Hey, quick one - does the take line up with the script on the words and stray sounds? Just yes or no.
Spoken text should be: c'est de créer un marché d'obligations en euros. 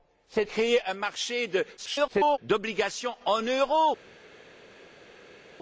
no